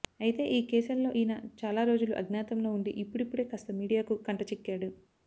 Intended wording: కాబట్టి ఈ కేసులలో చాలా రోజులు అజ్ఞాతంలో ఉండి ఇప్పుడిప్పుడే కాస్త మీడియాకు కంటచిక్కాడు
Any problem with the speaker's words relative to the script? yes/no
yes